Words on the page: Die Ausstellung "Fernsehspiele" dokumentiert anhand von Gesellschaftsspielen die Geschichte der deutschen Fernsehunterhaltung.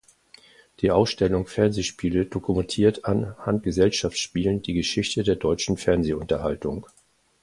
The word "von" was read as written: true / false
false